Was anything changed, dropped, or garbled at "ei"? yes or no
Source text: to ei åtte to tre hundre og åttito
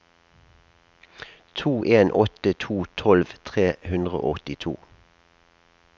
yes